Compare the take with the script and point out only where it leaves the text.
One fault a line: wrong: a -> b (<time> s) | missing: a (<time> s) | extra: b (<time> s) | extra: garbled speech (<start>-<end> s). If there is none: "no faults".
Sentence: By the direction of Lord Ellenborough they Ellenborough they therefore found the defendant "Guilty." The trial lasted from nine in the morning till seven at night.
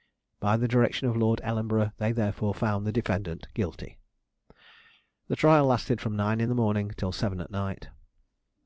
missing: Ellenborough they (2.1 s)